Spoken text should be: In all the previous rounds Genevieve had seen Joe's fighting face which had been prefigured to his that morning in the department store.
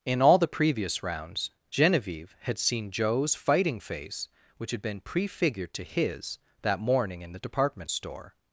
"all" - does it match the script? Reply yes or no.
yes